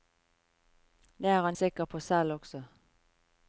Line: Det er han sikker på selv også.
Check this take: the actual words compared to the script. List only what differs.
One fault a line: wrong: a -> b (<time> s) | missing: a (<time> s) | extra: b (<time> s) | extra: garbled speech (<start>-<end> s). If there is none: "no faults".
no faults